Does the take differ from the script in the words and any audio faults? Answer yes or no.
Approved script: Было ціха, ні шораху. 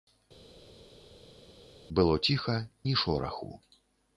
no